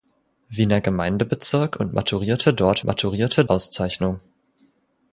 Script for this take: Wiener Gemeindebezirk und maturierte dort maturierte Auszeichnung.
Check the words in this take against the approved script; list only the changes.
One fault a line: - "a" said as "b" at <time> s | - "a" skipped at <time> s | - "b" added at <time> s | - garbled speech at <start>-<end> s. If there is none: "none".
none